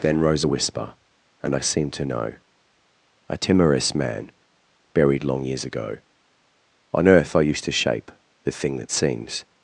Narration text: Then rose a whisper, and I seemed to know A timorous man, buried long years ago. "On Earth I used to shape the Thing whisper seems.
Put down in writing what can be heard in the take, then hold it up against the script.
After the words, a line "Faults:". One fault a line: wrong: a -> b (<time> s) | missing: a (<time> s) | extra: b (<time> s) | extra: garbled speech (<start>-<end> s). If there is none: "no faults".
Then rose a whisper, and I seemed to know A timorous man, buried long years ago. "On Earth I used to shape the Thing that seems.
Faults:
wrong: whisper -> that (8.8 s)